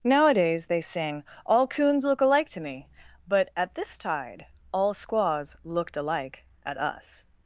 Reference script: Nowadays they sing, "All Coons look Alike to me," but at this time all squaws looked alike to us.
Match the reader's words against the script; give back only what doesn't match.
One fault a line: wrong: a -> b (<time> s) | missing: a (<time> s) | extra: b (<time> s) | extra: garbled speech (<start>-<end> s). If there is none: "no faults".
wrong: time -> tide (4.0 s)
wrong: to -> at (6.7 s)